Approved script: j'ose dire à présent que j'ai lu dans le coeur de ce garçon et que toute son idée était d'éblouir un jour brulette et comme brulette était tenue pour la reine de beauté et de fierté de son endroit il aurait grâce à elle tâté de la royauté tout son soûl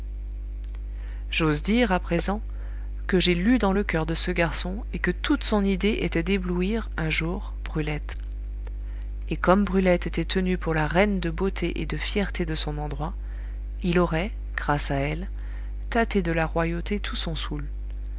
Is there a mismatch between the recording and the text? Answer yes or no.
no